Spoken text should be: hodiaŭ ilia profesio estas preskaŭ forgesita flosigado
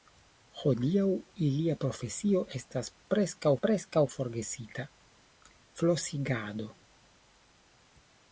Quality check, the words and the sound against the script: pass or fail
fail